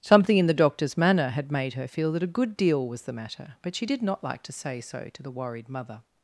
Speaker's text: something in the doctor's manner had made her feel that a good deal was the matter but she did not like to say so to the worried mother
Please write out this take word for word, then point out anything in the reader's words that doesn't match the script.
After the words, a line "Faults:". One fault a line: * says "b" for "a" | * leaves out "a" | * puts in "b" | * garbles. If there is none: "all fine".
something in the doctor's manner had made her feel that a good deal was the matter but she did not like to say so to the worried mother
Faults:
all fine